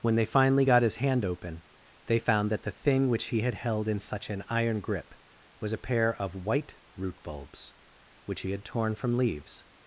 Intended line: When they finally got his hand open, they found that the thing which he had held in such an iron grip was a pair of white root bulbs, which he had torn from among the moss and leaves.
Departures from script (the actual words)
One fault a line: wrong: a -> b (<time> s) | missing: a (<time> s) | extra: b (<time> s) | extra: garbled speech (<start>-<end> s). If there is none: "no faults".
missing: among the moss and (9.2 s)